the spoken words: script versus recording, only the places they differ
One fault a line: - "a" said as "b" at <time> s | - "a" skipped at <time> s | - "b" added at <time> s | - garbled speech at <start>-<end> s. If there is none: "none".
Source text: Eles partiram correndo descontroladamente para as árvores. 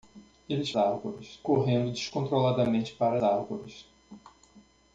- "partiram" said as "árvores" at 0.8 s
- "as" skipped at 3.2 s